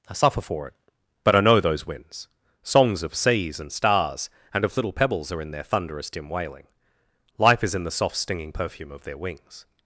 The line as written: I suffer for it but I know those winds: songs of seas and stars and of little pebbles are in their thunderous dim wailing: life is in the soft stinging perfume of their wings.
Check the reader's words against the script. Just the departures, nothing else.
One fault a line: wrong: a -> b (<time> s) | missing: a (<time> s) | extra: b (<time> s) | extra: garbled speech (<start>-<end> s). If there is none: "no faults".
no faults